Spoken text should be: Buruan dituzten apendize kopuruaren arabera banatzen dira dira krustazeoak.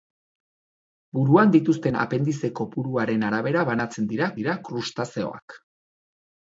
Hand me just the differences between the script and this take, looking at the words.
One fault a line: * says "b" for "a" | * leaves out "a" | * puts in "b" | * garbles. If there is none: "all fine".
all fine